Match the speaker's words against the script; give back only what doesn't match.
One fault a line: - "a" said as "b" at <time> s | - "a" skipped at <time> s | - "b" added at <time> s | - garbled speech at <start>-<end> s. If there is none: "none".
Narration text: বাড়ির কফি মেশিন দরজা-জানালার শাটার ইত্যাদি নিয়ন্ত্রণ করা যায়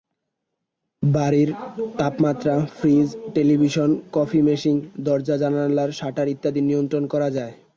- "তাপমাত্রা ফ্রিজ টেলিভিশন" added at 2.0 s